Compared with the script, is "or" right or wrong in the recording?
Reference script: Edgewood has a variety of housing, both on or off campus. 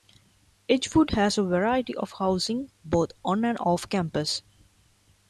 wrong